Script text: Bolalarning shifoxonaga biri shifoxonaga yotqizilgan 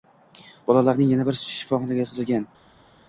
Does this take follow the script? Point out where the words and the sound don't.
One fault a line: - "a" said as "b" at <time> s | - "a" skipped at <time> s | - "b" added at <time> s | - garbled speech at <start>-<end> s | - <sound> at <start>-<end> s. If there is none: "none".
- "shifoxonaga" said as "yana" at 1.1 s